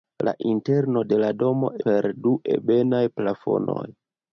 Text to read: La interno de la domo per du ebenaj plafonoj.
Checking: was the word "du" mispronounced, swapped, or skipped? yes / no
no